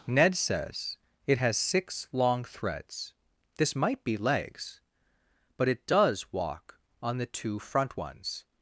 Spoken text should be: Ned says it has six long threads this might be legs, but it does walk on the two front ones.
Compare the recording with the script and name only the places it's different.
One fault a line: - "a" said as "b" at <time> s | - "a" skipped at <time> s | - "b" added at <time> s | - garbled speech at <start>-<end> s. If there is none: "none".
none